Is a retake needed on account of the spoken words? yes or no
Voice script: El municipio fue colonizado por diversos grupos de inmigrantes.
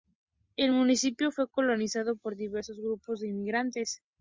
no